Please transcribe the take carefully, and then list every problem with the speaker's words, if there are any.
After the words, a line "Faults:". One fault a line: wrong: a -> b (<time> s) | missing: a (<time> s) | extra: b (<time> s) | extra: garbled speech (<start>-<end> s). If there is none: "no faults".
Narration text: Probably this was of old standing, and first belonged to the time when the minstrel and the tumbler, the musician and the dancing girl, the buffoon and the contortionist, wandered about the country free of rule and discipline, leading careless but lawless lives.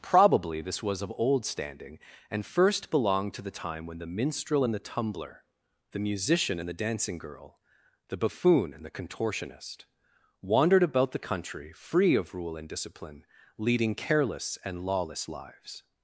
Probably this was of old standing, and first belonged to the time when the minstrel and the tumbler, the musician and the dancing girl, the buffoon and the contortionist, wandered about the country free of rule and discipline, leading careless and lawless lives.
Faults:
wrong: but -> and (14.6 s)